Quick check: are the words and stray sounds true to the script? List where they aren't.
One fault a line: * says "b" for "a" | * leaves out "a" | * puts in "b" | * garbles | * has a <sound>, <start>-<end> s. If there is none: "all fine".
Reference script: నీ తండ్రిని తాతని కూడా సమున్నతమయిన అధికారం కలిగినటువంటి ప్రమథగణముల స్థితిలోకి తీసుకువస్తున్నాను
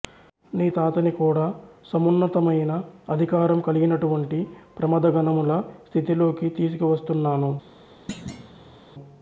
* leaves out "తండ్రిని"
* has a thud, 8.1-8.8 s